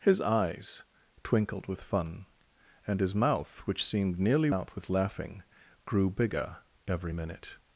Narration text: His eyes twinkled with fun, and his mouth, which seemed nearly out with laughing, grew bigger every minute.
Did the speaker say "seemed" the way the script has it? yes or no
yes